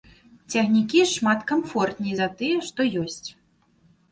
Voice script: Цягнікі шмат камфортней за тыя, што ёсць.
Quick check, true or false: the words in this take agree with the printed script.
true